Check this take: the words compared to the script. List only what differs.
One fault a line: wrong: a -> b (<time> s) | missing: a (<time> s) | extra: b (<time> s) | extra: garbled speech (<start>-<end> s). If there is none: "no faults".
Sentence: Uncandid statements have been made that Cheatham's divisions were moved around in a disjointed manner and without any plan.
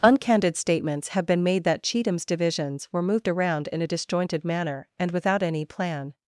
no faults